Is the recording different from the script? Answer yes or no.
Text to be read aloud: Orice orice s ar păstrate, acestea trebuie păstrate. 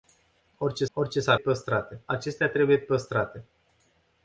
no